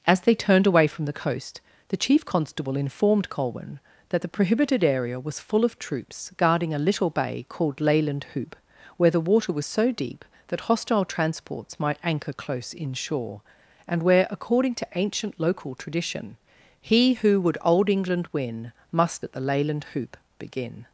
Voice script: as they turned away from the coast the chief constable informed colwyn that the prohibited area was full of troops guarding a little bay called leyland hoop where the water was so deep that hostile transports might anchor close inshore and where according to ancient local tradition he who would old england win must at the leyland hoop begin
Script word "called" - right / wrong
right